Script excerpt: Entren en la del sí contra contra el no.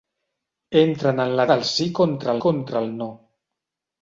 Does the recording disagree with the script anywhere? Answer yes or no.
no